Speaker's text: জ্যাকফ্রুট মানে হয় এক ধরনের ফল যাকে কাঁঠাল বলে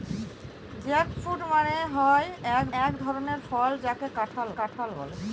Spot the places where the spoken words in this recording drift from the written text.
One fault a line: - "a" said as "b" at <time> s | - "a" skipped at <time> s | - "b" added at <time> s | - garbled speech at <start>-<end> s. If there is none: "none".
- "এক" added at 2.8 s
- "কাঁঠাল" added at 4.6 s